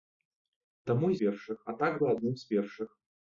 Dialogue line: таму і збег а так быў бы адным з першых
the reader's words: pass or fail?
fail